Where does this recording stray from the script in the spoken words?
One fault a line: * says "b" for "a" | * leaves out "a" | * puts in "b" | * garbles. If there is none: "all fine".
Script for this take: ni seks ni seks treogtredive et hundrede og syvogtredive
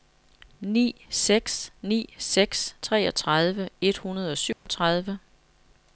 all fine